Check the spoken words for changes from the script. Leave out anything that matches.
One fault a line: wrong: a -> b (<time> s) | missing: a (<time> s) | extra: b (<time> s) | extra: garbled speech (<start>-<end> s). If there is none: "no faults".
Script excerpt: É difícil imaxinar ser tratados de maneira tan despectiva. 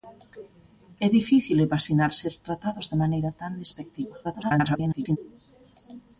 extra: garbled speech (4.2-5.2 s)